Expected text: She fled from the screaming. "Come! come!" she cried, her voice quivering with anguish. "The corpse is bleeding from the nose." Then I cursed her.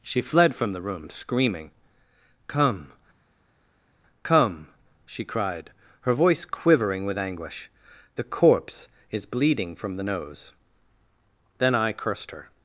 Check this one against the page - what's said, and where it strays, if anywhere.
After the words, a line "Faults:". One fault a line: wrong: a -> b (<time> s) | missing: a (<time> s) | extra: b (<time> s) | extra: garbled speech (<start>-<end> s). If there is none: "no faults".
She fled from the room screaming. "Come! come!" she cried, her voice quivering with anguish. "The corpse is bleeding from the nose." Then I cursed her.
Faults:
extra: room (0.8 s)